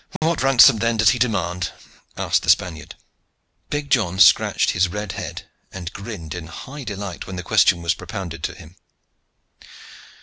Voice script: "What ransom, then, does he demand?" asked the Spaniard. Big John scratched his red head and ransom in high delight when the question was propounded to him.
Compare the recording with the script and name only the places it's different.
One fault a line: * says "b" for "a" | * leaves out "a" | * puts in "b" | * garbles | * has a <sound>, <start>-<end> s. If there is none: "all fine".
* has a dropout, 0.2-0.2 s
* says "grinned" for "ransom"